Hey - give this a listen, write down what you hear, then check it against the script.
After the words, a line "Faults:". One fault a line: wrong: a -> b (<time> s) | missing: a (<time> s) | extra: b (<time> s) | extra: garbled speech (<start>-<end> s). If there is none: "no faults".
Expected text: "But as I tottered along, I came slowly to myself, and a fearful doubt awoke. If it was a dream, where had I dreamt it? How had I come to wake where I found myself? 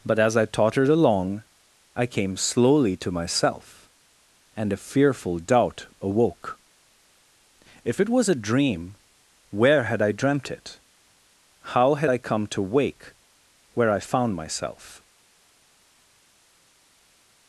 "But as I tottered along, I came slowly to myself, and a fearful doubt awoke. If it was a dream, where had I dreamt it? How had I come to wake where I found myself?
Faults:
no faults